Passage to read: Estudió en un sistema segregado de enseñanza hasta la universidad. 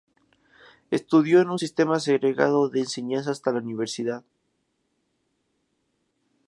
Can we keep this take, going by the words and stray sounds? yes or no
yes